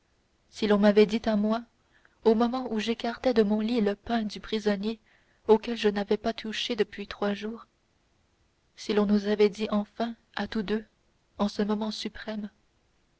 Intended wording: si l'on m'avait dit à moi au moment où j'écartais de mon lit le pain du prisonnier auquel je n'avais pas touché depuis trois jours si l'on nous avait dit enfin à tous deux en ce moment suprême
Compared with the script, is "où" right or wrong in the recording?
right